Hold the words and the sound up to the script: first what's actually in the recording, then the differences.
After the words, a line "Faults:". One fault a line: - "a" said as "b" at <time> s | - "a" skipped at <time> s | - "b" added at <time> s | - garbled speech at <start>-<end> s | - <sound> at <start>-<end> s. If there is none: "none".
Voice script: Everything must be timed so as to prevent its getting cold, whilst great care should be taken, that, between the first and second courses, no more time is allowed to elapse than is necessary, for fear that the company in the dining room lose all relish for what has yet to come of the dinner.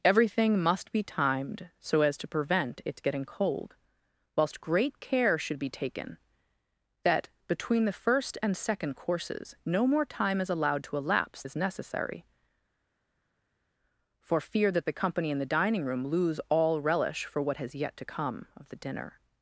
Everything must be timed so as to prevent its getting cold, whilst great care should be taken, that, between the first and second courses, no more time is allowed to elapse is necessary, for fear that the company in the dining room lose all relish for what has yet to come of the dinner.
Faults:
- "than" skipped at 11.4 s